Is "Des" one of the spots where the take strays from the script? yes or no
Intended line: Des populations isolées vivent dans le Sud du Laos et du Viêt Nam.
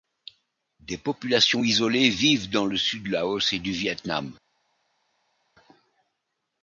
no